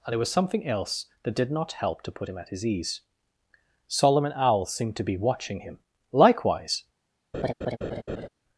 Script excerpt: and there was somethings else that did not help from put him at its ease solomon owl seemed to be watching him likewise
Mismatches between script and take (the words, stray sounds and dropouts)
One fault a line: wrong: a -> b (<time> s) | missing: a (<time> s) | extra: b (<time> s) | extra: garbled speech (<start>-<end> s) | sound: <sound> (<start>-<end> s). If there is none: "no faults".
wrong: somethings -> something (0.3 s)
wrong: from -> to (2.0 s)
wrong: its -> his (2.5 s)
sound: laugh (7.3-8.3 s)